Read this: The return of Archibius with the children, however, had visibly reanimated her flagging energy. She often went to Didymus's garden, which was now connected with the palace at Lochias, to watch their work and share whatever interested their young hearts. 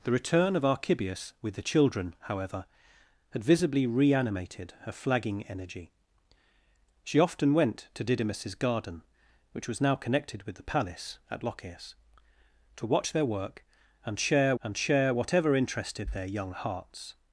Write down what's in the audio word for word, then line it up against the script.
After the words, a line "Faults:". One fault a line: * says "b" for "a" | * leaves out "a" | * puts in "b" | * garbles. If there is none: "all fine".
The return of Archibius with the children, however, had visibly reanimated her flagging energy. She often went to Didymus's garden, which was now connected with the palace at Lochias, to watch their work and share and share whatever interested their young hearts.
Faults:
* puts in "and share"